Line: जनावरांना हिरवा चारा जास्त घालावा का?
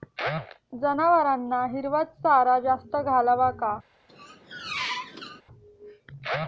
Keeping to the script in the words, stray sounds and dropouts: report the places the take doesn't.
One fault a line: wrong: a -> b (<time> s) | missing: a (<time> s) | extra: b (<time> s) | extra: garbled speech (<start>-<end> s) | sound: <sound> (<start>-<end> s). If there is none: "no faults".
sound: squeak (4.1-5.4 s)